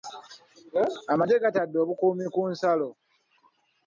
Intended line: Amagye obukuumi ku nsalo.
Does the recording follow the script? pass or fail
fail